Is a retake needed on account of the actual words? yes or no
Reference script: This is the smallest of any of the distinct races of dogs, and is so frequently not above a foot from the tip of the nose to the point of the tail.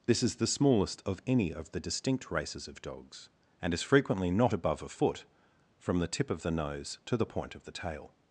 yes